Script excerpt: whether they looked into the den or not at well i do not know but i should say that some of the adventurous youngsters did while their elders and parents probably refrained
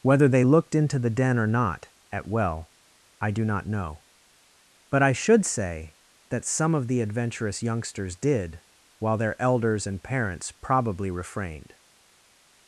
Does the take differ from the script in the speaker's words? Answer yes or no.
no